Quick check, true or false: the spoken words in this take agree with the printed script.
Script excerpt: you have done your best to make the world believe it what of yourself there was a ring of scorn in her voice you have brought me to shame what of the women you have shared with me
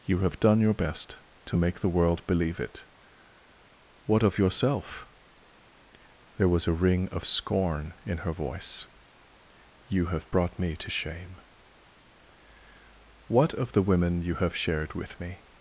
true